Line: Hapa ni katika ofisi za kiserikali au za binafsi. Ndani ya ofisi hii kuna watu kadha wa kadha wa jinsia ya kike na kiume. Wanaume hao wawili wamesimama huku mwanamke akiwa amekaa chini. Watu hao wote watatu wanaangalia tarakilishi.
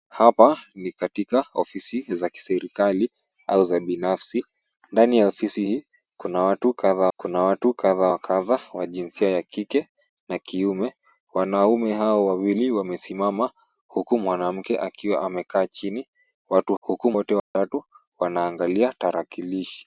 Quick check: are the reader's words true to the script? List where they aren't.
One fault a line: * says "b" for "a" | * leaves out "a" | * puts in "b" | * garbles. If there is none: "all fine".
* puts in "kuna watu kadha"
* says "huku" for "hao"